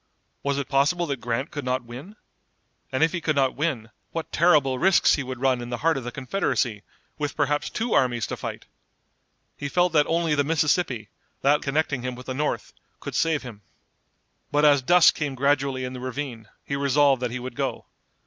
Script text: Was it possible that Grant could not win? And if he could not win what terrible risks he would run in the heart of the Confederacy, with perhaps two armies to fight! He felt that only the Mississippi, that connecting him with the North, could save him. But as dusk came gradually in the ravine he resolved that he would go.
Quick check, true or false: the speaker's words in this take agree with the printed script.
true